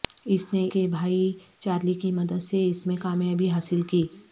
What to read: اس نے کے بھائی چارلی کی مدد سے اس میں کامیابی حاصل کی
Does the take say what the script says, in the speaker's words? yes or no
yes